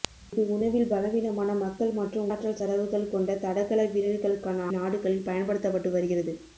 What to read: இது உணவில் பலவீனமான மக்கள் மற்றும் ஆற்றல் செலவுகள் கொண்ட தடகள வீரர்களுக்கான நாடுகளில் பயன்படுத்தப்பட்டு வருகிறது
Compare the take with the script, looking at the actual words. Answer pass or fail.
pass